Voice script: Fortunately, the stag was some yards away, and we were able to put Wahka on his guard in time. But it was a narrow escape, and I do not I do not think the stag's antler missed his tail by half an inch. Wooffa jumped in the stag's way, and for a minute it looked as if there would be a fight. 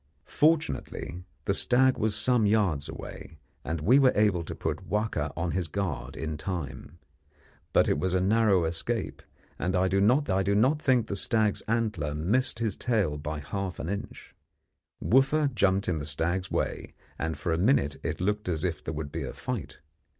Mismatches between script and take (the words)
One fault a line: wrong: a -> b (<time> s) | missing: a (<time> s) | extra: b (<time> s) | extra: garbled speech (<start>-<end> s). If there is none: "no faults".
no faults